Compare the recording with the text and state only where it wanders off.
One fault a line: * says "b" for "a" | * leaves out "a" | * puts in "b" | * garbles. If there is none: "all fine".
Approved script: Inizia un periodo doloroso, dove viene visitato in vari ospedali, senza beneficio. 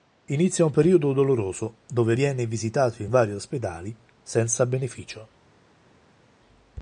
all fine